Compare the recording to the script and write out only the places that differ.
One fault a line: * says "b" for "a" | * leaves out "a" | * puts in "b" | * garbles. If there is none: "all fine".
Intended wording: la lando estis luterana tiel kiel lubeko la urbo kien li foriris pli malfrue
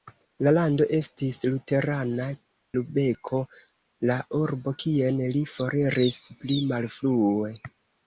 * leaves out "tiel kiel"